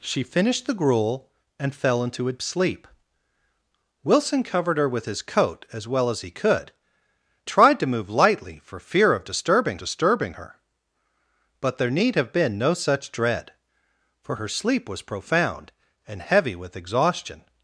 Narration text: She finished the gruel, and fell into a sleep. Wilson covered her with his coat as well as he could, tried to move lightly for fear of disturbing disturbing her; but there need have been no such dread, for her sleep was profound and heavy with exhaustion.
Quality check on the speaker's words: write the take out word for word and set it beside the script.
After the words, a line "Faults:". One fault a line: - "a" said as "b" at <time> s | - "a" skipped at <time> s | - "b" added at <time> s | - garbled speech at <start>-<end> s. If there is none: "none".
She finished the gruel, and fell into a sleep. Wilson covered her with his coat as well as he could, tried to move lightly for fear of disturbing disturbing her; but there need have been no such dread, for her sleep was profound and heavy with exhaustion.
Faults:
none